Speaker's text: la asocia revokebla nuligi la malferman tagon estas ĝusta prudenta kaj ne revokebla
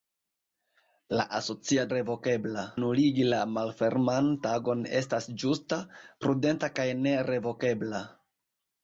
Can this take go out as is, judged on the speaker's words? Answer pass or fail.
pass